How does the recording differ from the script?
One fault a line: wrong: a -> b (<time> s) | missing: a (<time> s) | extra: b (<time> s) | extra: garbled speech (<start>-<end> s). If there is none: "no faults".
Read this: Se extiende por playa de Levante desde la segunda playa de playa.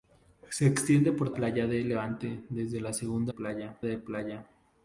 no faults